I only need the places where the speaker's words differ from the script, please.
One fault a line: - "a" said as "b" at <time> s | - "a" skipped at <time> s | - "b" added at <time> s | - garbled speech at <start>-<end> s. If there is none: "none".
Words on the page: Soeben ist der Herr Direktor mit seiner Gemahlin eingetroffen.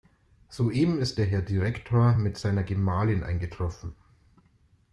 none